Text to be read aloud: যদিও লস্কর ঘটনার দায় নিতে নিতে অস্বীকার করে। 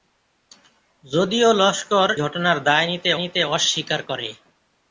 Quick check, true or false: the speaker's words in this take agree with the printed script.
true